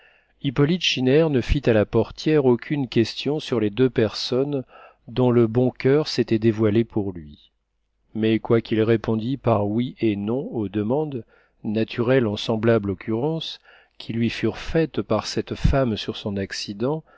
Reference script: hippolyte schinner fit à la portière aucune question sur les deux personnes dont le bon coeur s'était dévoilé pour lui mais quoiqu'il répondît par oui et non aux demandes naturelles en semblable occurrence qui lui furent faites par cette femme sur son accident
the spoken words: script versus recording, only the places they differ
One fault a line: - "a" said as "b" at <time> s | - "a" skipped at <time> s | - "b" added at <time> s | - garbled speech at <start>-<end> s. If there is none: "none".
- "ne" added at 1.3 s